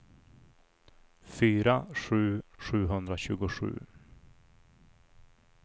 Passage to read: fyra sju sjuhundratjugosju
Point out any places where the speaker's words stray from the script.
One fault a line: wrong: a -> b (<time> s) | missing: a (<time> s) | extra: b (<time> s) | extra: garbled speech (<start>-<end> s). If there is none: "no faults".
no faults